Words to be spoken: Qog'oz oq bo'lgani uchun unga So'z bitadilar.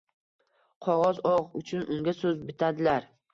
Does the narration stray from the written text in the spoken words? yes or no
yes